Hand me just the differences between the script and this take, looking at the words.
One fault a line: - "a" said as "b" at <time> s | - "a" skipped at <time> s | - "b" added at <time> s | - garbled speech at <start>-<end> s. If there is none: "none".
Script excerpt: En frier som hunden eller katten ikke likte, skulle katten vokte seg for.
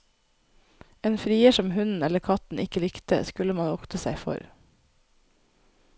- "katten" said as "man" at 3.6 s